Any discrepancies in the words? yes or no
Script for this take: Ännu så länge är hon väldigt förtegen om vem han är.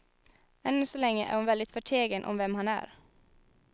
no